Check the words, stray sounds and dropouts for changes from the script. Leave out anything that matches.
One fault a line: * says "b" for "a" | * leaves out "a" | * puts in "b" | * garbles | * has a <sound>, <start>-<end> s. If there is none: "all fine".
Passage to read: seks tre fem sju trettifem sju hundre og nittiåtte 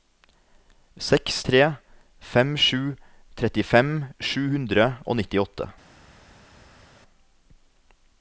all fine